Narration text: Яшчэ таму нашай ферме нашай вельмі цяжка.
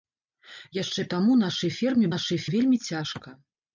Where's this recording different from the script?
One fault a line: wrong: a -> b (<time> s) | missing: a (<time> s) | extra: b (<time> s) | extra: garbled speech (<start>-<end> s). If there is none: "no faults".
no faults